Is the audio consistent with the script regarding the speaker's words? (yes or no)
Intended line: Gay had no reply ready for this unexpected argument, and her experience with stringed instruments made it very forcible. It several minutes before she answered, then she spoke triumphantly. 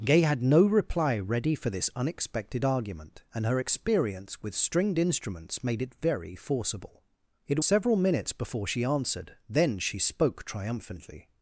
yes